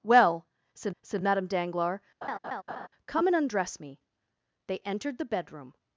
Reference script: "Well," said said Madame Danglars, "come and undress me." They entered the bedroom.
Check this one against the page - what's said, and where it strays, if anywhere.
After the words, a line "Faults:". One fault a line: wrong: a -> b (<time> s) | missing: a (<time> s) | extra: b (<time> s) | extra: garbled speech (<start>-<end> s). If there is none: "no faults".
"Well," said said Madame Danglars, "come and undress me." They entered the bedroom.
Faults:
no faults